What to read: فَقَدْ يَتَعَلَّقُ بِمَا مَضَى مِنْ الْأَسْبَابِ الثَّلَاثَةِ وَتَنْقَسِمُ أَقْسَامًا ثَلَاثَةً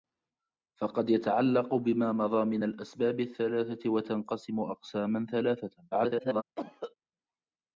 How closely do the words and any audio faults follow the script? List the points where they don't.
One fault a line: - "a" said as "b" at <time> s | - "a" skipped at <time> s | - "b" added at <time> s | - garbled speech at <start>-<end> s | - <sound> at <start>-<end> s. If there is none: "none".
- garbled speech at 5.9-6.4 s
- cough at 6.6-6.9 s